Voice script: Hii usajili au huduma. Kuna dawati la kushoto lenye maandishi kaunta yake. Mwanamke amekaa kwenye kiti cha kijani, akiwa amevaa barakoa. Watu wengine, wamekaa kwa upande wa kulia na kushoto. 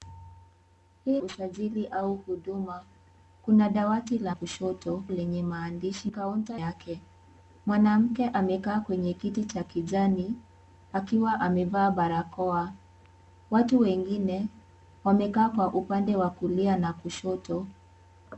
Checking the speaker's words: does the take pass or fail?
pass